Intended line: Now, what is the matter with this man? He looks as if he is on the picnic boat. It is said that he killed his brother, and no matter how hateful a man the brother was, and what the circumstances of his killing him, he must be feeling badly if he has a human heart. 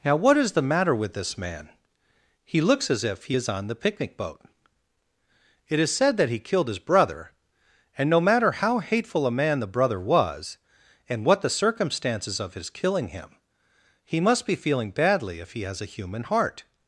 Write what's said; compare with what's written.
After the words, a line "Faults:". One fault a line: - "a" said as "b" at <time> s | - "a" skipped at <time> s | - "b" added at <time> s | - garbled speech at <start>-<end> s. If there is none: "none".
Now, what is the matter with this man? He looks as if he is on the picnic boat. It is said that he killed his brother, and no matter how hateful a man the brother was, and what the circumstances of his killing him, he must be feeling badly if he has a human heart.
Faults:
none